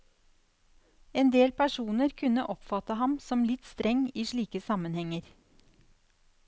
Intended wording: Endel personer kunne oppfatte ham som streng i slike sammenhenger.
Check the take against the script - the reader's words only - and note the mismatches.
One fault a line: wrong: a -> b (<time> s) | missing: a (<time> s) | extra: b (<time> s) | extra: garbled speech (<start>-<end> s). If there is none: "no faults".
extra: litt (3.5 s)